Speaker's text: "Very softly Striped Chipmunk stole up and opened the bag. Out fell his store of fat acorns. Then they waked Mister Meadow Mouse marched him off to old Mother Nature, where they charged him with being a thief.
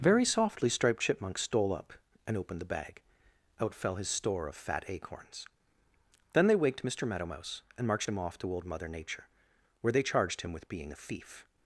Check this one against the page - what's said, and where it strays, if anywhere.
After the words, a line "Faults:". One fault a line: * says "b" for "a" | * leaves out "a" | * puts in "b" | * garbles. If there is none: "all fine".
"Very softly Striped Chipmunk stole up and opened the bag. Out fell his store of fat acorns. Then they waked Mister Meadow Mouse and marched him off to old Mother Nature, where they charged him with being a thief.
Faults:
* puts in "and"